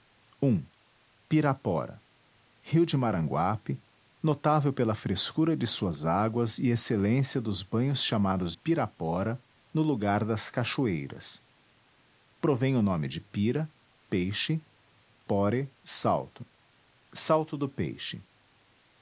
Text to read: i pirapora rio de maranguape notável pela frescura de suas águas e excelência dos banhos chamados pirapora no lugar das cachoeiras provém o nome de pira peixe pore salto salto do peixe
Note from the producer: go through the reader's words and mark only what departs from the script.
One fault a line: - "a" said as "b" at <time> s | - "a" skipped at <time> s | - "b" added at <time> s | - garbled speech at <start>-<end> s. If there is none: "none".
none